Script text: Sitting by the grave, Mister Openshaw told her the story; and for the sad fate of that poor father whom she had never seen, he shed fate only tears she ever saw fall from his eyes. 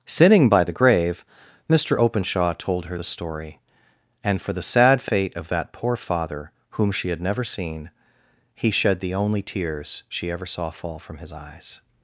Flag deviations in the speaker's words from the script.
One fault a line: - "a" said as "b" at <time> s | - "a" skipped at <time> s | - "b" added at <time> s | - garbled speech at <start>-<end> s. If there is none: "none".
- "fate" said as "the" at 9.0 s